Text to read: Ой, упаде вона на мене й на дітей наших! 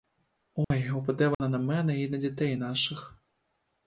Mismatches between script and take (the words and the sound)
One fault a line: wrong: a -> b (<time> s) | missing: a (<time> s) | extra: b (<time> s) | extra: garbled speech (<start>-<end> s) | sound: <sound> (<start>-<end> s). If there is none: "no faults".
sound: dropout (0.6-0.7 s)
sound: dropout (1.3-1.4 s)